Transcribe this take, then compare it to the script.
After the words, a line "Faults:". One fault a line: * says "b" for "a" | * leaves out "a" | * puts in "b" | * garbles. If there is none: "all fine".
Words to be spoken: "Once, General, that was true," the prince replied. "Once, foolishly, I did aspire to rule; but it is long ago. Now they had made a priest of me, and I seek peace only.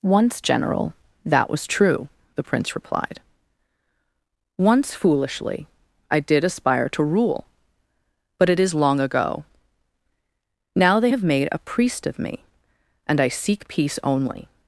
"Once, General, that was true," the prince replied. "Once, foolishly, I did aspire to rule; but it is long ago. Now they have made a priest of me, and I seek peace only.
Faults:
* says "have" for "had"